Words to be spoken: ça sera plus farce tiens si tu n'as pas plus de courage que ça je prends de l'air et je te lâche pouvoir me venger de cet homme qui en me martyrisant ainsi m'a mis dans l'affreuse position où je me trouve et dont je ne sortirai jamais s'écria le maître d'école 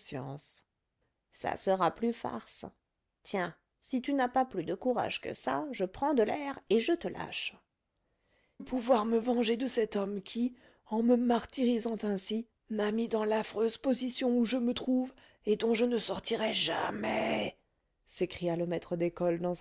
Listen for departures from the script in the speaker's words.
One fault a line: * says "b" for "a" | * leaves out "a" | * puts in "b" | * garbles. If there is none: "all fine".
all fine